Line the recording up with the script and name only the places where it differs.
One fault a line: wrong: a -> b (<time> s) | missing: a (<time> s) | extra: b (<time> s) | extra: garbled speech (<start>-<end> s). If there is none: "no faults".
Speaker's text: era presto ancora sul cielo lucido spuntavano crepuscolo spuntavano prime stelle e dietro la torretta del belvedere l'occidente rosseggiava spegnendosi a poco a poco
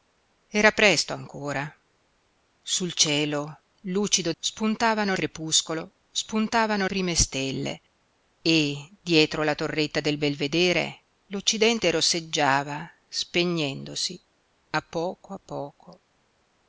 no faults